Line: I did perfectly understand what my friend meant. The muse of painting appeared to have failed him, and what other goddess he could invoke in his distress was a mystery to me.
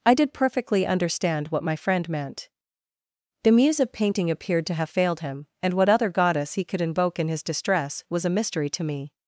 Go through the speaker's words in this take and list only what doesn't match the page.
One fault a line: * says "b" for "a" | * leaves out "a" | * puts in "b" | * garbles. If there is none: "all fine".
all fine